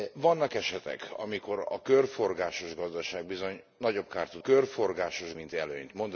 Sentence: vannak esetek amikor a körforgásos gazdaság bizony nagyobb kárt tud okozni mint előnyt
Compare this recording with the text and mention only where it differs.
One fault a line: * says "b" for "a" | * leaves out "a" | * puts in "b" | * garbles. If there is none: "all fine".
* says "körforgásos" for "okozni"